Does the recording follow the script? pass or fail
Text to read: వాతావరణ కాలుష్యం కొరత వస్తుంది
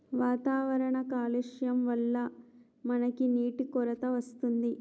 fail